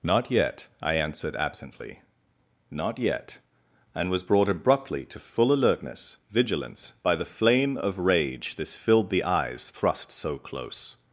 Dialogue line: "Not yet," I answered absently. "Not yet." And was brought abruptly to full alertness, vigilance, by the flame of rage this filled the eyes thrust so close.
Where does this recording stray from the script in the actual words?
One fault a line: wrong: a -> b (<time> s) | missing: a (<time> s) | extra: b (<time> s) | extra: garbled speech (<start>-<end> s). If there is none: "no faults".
no faults